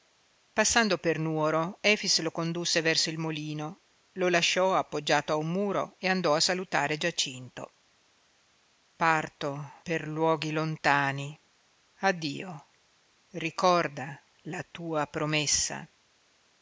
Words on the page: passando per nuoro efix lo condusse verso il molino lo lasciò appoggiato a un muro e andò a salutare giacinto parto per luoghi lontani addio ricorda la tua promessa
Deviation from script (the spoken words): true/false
false